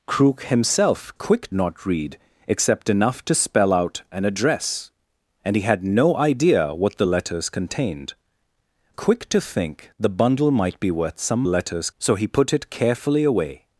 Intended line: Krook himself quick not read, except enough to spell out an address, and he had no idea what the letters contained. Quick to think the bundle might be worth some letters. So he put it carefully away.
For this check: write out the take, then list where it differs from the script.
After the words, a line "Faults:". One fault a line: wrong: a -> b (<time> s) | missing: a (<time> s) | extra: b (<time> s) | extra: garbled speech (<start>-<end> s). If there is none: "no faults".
Krook himself quick not read, except enough to spell out an address, and he had no idea what the letters contained. Quick to think the bundle might be worth some letters. So he put it carefully away.
Faults:
no faults